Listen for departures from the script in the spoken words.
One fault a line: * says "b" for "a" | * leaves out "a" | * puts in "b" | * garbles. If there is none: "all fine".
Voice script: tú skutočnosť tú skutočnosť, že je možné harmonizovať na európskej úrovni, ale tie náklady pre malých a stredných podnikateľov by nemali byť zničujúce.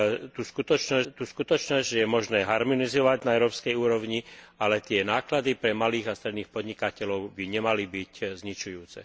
all fine